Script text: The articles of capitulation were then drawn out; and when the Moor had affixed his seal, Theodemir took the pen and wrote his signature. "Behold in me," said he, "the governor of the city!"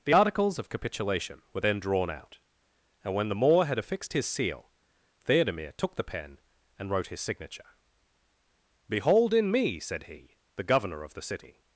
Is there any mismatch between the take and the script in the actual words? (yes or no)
no